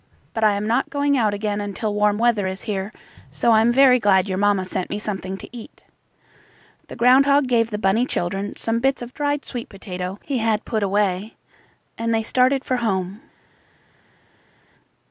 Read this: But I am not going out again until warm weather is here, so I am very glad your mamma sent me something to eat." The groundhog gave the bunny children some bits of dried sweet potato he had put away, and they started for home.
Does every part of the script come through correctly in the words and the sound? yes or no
yes